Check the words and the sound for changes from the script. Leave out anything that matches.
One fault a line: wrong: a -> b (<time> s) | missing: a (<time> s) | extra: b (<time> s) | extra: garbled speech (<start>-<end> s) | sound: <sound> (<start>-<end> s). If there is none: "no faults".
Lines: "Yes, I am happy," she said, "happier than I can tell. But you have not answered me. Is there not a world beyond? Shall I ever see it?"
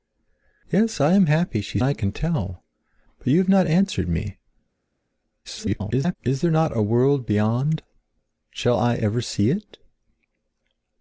missing: said happier than (1.8 s)
extra: garbled speech (5.4-6.2 s)